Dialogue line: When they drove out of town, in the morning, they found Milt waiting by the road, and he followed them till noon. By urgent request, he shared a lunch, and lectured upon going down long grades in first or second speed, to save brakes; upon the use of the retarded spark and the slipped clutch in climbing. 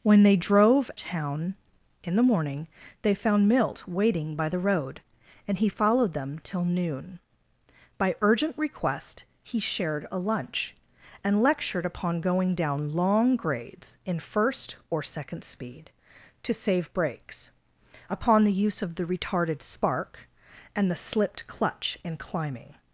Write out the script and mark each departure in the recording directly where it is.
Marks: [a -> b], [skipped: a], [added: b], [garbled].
When they drove [skipped: out of] town, in the morning, they found Milt waiting by the road, and he followed them till noon. By urgent request, he shared a lunch, and lectured upon going down long grades in first or second speed, to save brakes; upon the use of the retarded spark and the slipped clutch in climbing.